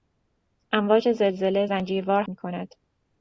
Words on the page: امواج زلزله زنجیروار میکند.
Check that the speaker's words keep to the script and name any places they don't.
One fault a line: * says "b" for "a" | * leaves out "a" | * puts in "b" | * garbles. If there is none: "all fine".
all fine